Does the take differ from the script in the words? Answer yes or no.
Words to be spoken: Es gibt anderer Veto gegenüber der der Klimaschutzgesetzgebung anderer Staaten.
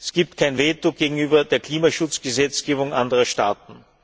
yes